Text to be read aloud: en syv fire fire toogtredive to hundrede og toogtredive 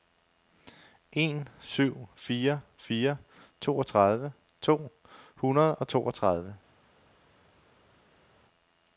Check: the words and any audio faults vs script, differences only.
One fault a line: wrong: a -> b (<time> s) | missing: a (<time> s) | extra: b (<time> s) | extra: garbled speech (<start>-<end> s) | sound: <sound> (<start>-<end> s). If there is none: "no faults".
no faults